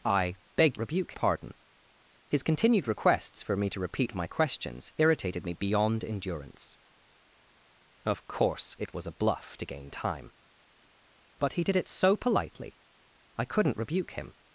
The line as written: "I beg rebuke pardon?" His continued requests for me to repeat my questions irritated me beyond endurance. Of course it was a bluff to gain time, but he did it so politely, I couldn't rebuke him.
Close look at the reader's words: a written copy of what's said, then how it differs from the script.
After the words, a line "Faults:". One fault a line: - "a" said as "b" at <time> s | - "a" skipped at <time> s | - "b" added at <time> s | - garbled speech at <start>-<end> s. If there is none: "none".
"I beg rebuke pardon?" His continued requests for me to repeat my questions irritated me beyond endurance. Of course it was a bluff to gain time, but he did it so politely, I couldn't rebuke him.
Faults:
none